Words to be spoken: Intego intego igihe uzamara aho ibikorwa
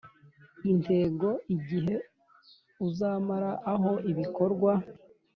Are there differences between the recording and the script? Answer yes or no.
yes